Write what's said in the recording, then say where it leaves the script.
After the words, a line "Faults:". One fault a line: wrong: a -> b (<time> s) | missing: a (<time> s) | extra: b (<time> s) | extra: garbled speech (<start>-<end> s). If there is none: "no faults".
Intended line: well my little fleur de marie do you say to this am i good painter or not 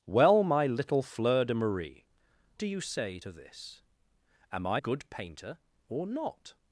well my little fleur de marie do you say to this am i good painter or not
Faults:
no faults